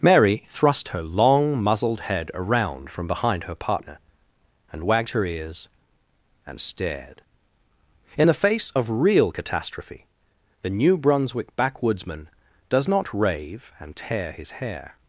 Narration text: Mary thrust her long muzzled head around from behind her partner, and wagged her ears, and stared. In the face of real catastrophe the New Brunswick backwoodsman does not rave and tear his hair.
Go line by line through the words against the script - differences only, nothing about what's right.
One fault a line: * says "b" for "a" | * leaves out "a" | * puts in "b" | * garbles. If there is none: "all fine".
all fine